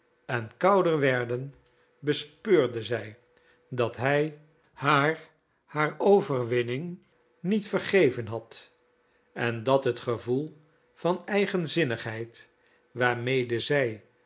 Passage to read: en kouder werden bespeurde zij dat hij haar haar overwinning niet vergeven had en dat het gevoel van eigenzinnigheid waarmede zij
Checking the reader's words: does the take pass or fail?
pass